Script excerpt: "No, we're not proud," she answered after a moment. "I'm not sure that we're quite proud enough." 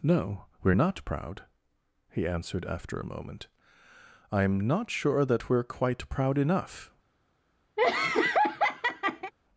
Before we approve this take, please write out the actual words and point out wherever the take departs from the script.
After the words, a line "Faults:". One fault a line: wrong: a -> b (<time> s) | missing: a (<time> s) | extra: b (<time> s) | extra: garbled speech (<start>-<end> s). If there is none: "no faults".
"No, we're not proud," he answered after a moment. "I'm not sure that we're quite proud enough."
Faults:
wrong: she -> he (2.1 s)